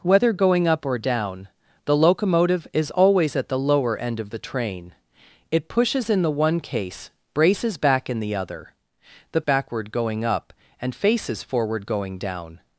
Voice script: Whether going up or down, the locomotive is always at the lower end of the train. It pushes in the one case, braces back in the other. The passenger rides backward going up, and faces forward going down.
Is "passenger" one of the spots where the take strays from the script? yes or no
yes